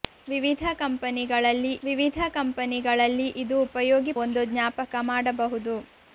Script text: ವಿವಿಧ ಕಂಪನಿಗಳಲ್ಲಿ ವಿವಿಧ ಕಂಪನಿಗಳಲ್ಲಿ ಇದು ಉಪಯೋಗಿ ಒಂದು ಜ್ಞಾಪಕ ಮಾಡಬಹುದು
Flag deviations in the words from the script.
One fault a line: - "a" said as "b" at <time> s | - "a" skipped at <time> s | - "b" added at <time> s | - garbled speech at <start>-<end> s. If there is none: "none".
none